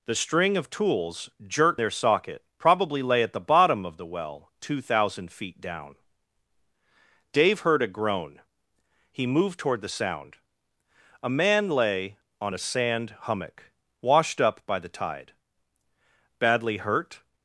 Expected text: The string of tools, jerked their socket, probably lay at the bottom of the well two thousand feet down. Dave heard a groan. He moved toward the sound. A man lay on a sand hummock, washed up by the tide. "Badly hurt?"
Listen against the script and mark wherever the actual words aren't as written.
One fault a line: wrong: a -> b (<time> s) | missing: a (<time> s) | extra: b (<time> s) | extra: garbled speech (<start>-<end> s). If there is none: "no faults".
no faults